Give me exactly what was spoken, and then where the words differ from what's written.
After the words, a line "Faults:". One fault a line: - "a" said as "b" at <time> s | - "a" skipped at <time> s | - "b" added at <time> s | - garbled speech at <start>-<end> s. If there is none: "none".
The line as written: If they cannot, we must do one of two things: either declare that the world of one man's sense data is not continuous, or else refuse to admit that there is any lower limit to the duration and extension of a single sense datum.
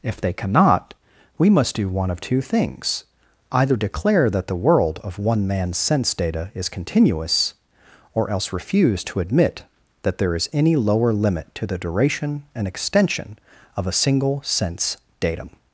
If they cannot, we must do one of two things: either declare that the world of one man's sense data is continuous, or else refuse to admit that there is any lower limit to the duration and extension of a single sense datum.
Faults:
- "not" skipped at 6.7 s